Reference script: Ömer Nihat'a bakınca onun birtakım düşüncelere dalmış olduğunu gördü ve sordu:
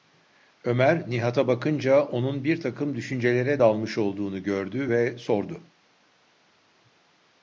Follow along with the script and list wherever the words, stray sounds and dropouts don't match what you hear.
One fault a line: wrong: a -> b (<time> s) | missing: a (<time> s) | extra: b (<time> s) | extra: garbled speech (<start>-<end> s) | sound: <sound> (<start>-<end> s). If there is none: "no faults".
no faults